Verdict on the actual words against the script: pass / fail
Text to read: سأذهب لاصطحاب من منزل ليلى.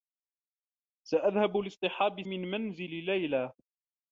pass